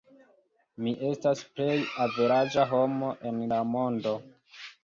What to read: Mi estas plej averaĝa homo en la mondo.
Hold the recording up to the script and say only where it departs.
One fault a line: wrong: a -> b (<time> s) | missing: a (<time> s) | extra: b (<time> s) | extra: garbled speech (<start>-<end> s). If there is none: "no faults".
no faults